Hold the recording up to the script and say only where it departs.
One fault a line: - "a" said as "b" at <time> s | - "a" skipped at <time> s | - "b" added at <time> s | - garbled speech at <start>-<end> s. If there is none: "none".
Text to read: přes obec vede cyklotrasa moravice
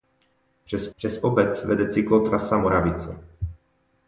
- "přes" added at 0.9 s